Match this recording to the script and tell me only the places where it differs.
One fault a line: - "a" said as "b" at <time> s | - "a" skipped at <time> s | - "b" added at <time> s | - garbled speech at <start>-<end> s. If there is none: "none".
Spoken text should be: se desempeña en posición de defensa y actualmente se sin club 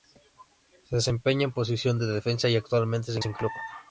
none